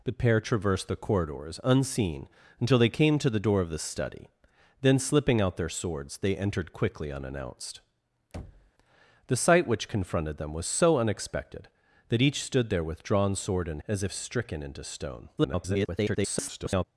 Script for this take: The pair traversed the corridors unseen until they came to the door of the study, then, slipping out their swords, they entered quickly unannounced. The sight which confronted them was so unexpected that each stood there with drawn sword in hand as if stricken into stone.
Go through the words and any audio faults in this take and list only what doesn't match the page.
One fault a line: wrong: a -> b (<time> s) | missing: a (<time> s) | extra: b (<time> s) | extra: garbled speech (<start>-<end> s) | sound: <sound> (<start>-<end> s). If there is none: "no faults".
sound: thud (8.3-8.7 s)
missing: hand (13.8 s)
extra: garbled speech (15.4-16.8 s)